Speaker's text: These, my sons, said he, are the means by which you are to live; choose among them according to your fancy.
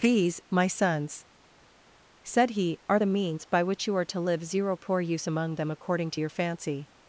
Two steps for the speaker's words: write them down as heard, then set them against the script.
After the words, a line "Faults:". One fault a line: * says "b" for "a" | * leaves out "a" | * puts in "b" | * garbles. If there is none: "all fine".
These, my sons, said he, are the means by which you are to live; zero poor use among them according to your fancy.
Faults:
* says "zero poor use" for "choose"